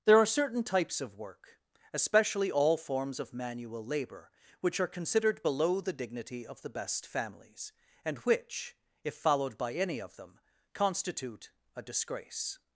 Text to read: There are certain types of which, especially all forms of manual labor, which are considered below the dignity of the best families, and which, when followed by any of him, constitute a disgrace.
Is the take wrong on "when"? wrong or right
wrong